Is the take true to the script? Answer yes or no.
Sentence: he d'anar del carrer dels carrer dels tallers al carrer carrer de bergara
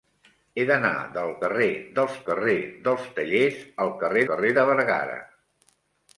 yes